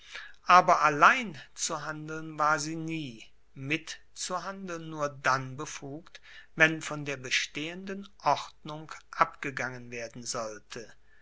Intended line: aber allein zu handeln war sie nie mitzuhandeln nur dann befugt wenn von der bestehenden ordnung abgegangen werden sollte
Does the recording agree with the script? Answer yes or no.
yes